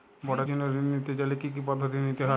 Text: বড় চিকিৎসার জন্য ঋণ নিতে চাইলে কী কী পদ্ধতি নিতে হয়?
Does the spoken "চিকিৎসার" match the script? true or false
false